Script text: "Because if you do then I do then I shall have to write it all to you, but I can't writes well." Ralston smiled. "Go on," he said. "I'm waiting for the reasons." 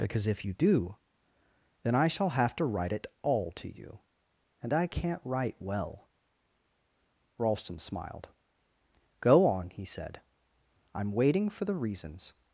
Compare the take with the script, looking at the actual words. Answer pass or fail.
fail